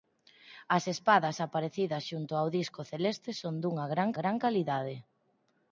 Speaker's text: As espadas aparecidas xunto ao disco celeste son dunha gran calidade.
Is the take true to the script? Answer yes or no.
no